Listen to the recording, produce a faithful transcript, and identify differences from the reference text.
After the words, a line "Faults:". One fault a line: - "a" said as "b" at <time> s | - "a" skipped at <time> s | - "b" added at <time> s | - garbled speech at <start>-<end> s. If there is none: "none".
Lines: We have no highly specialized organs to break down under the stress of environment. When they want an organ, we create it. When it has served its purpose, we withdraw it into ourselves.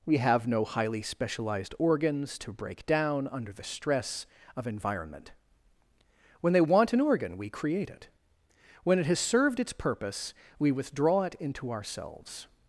We have no highly specialized organs to break down under the stress of environment. When they want an organ, we create it. When it has served its purpose, we withdraw it into ourselves.
Faults:
none